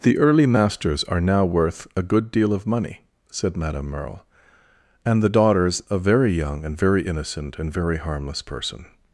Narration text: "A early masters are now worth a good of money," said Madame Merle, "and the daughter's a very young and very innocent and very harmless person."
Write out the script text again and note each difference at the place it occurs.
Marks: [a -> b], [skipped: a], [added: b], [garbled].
["A -> The] early masters are now worth a good [added: deal] of money," said Madame Merle, "and the daughter's a very young and very innocent and very harmless person."